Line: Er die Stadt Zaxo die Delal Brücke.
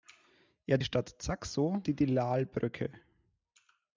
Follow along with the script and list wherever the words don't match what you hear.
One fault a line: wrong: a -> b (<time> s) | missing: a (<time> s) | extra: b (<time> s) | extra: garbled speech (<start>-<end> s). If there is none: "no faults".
no faults